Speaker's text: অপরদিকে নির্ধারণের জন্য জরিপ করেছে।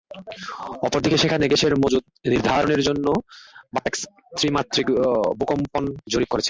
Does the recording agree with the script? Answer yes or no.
no